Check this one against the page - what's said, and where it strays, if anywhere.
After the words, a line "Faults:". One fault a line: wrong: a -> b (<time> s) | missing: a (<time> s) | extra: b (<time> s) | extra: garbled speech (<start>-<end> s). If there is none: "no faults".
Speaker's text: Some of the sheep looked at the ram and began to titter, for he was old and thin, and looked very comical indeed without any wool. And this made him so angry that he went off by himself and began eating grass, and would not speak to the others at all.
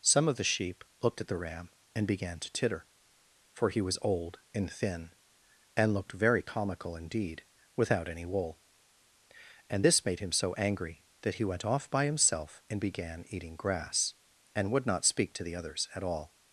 Some of the sheep looked at the ram and began to titter, for he was old and thin, and looked very comical indeed without any wool. And this made him so angry that he went off by himself and began eating grass, and would not speak to the others at all.
Faults:
no faults